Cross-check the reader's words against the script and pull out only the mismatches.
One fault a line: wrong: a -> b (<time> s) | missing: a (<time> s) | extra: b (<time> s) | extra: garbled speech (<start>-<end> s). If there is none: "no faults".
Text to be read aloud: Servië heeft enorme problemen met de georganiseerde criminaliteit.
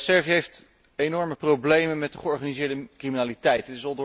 no faults